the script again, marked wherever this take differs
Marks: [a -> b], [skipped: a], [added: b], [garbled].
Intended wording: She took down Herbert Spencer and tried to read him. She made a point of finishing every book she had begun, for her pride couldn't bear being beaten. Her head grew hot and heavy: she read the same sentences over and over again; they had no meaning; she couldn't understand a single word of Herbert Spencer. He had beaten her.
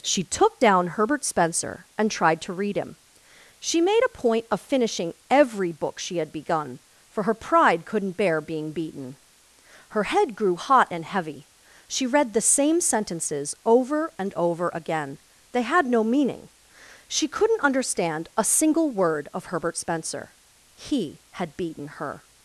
She took down Herbert Spencer and tried to read him. She made a point of finishing every book she had begun, for her pride couldn't bear being beaten. Her head grew hot and heavy: she read the same sentences over and over again; they had no meaning; she couldn't understand a single word of Herbert Spencer. He had beaten her.